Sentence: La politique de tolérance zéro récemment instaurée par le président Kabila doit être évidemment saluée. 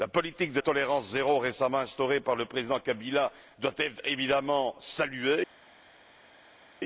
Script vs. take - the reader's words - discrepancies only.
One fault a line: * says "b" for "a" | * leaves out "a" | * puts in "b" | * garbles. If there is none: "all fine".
all fine